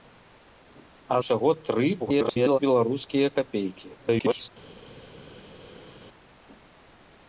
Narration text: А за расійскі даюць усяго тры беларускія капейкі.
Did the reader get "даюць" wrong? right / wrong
wrong